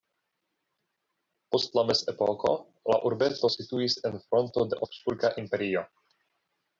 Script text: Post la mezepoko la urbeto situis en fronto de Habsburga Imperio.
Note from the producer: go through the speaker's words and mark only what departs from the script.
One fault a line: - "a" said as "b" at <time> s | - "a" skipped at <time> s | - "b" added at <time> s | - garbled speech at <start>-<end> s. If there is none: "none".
none